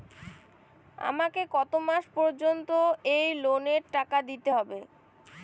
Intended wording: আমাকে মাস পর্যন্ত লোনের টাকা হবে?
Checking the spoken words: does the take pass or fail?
fail